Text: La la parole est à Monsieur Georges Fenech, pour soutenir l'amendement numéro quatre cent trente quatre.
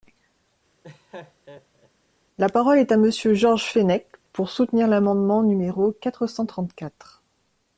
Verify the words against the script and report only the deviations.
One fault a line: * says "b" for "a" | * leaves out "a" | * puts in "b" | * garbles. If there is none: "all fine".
* leaves out "la"